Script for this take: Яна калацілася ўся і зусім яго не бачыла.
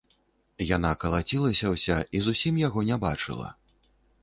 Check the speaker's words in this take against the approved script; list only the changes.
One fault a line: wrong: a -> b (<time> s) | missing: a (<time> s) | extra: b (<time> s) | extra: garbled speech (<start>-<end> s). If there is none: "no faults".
no faults